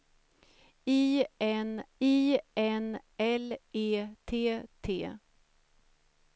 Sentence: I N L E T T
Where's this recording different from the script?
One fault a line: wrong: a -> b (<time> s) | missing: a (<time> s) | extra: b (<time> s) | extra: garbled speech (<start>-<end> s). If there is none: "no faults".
extra: I N (2.0 s)